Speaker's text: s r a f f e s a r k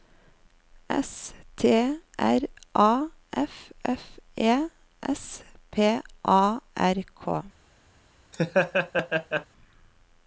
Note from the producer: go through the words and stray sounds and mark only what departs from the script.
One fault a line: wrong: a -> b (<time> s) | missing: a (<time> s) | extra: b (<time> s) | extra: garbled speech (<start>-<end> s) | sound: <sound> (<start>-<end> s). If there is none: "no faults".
extra: t (1.6 s)
extra: p (5.7 s)
sound: laugh (8.3-9.5 s)